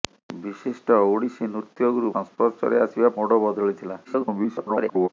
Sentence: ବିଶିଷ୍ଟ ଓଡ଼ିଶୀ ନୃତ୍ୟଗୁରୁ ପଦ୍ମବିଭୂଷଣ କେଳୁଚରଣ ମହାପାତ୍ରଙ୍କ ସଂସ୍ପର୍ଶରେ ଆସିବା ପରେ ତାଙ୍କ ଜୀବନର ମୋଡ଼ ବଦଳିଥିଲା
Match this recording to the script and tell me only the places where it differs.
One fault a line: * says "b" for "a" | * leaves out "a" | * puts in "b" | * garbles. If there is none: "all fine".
* leaves out "ପଦ୍ମବିଭୂଷଣ କେଳୁଚରଣ ମହାପାତ୍ରଙ୍କ"
* leaves out "ପରେ ତାଙ୍କ ଜୀବନର"
* garbles